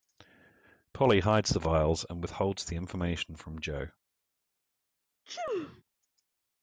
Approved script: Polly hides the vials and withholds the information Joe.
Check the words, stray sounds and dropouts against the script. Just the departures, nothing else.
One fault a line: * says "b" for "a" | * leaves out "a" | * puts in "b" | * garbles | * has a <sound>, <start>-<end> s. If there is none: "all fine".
* puts in "from"
* has a sneeze, 5.3-5.8 s